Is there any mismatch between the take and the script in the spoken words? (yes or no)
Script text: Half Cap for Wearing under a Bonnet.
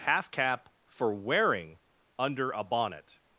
no